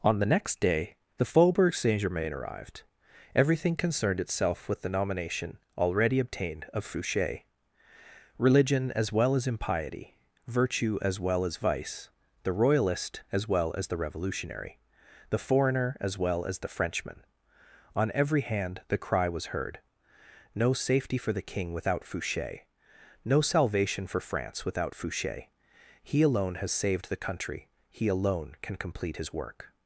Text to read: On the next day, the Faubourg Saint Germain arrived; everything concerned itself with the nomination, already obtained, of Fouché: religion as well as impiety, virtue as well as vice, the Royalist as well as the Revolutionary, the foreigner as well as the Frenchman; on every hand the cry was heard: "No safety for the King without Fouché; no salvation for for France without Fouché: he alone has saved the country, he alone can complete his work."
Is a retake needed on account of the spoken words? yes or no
yes